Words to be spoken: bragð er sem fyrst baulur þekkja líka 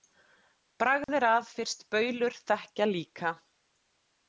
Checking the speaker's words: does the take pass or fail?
fail